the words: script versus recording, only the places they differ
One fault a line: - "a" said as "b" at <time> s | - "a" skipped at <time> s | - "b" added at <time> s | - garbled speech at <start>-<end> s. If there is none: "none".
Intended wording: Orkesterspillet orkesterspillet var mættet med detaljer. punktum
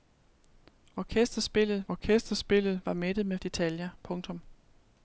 none